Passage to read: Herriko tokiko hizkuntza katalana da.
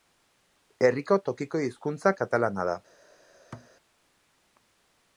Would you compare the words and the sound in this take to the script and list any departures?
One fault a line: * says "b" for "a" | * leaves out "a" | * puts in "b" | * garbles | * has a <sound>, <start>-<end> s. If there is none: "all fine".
* has a thud, 3.5-3.7 s